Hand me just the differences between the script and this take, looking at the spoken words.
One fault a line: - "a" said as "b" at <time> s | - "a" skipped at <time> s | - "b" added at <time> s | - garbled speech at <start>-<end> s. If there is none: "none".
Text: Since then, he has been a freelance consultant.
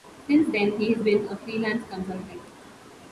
none